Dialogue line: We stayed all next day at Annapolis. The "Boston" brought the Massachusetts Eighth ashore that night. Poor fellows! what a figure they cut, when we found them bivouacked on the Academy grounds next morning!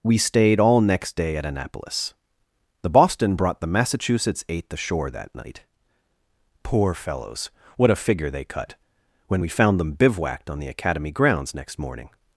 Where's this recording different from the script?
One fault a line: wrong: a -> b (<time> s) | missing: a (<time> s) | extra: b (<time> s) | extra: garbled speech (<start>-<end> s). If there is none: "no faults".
no faults